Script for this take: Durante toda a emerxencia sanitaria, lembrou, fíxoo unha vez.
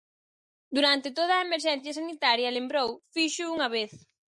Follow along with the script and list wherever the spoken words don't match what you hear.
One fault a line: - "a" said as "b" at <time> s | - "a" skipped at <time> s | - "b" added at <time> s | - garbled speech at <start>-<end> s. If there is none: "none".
none